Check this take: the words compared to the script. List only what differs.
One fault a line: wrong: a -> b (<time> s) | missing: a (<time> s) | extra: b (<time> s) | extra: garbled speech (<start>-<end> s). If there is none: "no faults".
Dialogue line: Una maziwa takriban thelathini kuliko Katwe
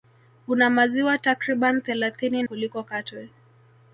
no faults